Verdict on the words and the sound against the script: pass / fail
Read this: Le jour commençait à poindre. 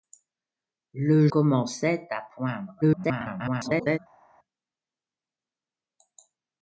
fail